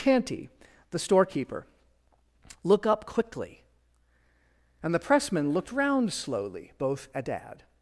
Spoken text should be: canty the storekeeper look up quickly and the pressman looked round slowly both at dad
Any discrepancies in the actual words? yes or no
no